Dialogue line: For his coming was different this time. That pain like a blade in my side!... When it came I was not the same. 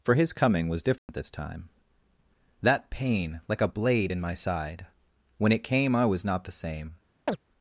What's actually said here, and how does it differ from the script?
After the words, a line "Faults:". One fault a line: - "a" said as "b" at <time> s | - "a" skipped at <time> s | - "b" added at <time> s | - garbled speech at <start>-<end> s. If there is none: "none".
For his coming was different this time. That pain like a blade in my side!... When it came I was not the same.
Faults:
none